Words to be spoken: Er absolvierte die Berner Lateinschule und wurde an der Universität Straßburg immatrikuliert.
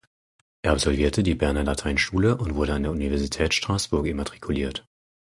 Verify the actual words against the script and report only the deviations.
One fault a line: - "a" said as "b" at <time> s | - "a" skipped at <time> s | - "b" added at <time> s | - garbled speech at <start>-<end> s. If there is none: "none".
none